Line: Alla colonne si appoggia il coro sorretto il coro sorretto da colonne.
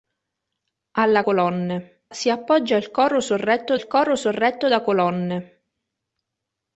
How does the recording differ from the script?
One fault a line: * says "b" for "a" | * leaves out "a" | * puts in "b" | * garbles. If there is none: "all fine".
all fine